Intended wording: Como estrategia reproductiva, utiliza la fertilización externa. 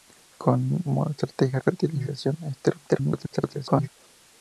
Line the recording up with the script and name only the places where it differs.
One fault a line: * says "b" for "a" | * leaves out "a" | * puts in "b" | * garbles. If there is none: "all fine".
* leaves out "reproductiva utiliza la"
* garbles